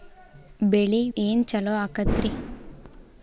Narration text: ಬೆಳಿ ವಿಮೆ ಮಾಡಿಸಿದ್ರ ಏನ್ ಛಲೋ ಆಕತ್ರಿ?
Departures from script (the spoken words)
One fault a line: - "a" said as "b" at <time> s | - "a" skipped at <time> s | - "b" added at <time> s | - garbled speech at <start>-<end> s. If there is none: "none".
- "ವಿಮೆ ಮಾಡಿಸಿದ್ರ" skipped at 1.1 s